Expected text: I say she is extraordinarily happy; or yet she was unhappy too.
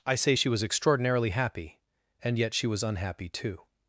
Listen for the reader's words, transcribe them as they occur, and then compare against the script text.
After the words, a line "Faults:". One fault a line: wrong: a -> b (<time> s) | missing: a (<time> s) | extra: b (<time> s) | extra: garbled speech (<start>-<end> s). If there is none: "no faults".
I say she was extraordinarily happy; and yet she was unhappy too.
Faults:
wrong: is -> was (0.5 s)
wrong: or -> and (2.2 s)